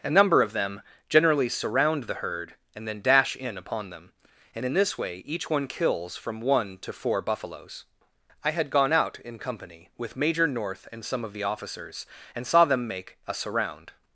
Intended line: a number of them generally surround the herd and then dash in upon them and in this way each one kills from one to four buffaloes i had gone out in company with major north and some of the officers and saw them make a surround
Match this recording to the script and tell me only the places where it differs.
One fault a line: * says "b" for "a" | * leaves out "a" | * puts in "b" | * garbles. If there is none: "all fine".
all fine